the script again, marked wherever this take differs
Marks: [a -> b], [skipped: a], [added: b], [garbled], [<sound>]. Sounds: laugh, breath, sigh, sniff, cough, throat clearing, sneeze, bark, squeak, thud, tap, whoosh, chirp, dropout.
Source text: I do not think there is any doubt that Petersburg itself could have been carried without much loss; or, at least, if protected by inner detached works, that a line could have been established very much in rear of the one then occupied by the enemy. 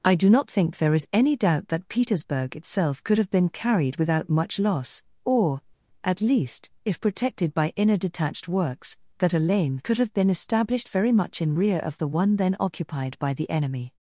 I do not think there is any doubt that Petersburg itself could have been carried without much loss; or, at least, if protected by inner detached works, that a [line -> lane] could have been established very much in rear of the one then occupied by the enemy.